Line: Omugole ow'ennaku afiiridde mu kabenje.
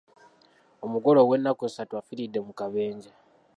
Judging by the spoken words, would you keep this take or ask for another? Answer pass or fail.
fail